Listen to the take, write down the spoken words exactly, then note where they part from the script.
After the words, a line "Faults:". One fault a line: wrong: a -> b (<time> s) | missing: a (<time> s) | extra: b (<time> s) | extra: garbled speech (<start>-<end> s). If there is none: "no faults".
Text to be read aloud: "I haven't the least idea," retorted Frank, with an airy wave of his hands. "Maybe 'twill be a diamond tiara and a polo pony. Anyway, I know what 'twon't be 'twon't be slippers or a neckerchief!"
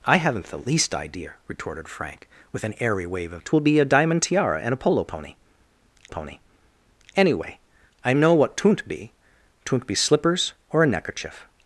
"I haven't the least idea," retorted Frank, with an airy wave of 'twill be a diamond tiara and a polo pony pony. Anyway, I know what 'twon't be 'twon't be slippers or a neckerchief!"
Faults:
missing: his hands Maybe (3.4 s)
extra: pony (6.1 s)